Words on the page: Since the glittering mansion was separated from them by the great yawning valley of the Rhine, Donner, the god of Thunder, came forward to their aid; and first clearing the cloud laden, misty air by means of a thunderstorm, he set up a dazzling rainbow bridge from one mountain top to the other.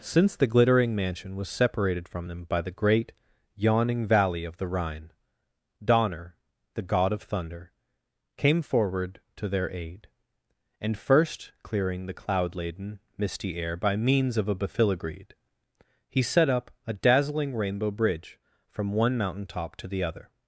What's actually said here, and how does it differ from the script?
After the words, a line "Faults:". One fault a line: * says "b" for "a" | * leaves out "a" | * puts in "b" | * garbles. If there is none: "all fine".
Since the glittering mansion was separated from them by the great yawning valley of the Rhine, Donner, the god of Thunder, came forward to their aid; and first clearing the cloud laden, misty air by means of a befiligreed, he set up a dazzling rainbow bridge from one mountain top to the other.
Faults:
* says "befiligreed" for "thunderstorm"